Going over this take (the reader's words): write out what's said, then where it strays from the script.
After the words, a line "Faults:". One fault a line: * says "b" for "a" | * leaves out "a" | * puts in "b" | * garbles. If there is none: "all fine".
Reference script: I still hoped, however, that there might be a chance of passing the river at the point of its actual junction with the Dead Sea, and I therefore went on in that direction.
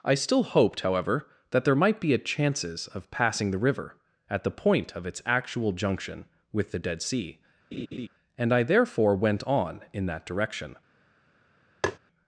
I still hoped, however, that there might be a chances of passing the river at the point of its actual junction with the Dead Sea, and I therefore went on in that direction.
Faults:
* says "chances" for "chance"